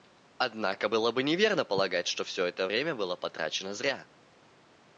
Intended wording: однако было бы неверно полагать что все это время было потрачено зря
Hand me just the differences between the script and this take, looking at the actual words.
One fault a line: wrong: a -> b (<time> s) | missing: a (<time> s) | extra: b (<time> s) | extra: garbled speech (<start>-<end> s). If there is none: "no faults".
no faults